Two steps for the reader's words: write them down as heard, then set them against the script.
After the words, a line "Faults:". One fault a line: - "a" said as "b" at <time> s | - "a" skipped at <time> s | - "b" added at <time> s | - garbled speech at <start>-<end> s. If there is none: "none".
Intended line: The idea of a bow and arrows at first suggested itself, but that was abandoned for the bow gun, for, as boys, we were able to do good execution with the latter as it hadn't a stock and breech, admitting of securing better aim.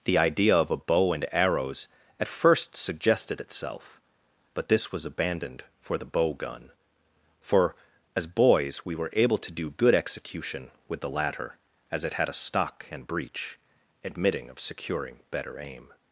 The idea of a bow and arrows at first suggested itself, but this was abandoned for the bow gun, for, as boys, we were able to do good execution with the latter as it had a stock and breech, admitting of securing better aim.
Faults:
- "that" said as "this" at 4.7 s
- "hadn't" said as "had" at 12.1 s